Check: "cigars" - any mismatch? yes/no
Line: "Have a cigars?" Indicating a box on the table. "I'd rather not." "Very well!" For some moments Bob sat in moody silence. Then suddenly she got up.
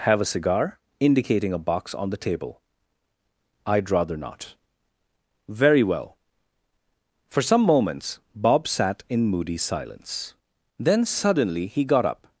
yes